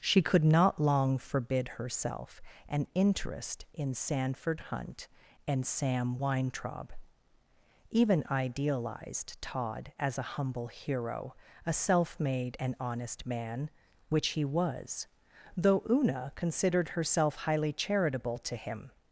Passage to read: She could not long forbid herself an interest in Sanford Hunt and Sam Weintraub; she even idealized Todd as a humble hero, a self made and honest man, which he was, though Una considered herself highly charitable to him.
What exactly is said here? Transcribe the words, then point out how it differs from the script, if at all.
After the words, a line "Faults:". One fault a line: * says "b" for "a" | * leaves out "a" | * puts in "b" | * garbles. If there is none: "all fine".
She could not long forbid herself an interest in Sanford Hunt and Sam Weintraub; even idealized Todd as a humble hero, a self made and honest man, which he was, though Una considered herself highly charitable to him.
Faults:
* leaves out "she"